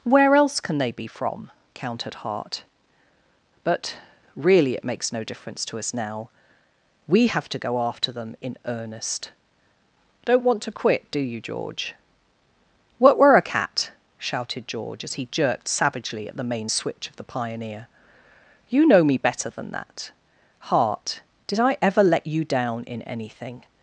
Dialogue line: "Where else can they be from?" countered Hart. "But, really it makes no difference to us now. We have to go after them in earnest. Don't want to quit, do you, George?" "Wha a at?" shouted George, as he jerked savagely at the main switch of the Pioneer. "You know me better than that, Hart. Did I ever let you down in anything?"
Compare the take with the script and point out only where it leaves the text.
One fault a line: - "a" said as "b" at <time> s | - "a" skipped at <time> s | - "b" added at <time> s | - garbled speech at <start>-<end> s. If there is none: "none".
- "Wha" said as "What were" at 13.0 s
- "at" said as "cat" at 13.4 s